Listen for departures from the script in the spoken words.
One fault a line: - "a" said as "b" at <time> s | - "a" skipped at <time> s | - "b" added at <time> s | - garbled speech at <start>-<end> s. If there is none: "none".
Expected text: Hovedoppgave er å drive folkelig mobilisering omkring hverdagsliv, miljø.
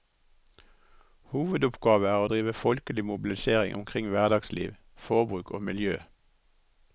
- "forbruk og" added at 5.1 s